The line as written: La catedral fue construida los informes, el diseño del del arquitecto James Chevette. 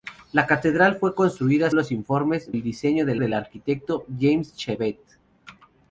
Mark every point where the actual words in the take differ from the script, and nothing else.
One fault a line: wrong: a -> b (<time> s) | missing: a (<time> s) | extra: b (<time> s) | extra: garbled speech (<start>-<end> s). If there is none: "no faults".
no faults